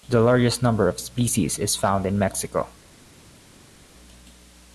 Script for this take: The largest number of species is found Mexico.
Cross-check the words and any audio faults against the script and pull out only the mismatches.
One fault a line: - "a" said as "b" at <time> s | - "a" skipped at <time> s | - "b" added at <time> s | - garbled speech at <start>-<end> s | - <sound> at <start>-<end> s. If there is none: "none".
- "in" added at 2.1 s